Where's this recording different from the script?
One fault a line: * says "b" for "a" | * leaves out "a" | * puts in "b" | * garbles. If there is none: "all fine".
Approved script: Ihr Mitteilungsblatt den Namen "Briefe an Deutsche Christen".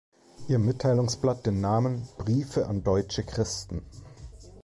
all fine